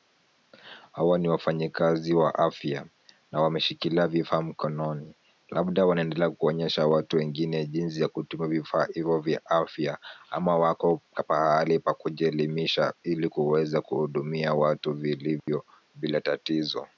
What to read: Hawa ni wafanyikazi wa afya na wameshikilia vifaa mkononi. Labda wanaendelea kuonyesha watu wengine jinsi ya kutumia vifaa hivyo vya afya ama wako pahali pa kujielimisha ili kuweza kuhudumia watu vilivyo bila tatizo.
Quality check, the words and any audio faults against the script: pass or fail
fail